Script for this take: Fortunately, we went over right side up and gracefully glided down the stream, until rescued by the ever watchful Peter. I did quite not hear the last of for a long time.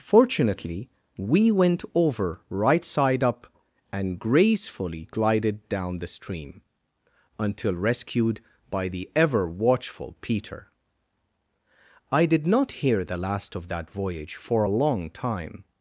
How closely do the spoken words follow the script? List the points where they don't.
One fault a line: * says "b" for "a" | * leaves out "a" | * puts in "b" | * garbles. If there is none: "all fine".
* leaves out "quite"
* puts in "that voyage"